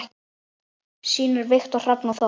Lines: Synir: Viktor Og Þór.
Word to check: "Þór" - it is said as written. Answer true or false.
true